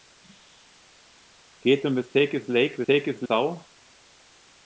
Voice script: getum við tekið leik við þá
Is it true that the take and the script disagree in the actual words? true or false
true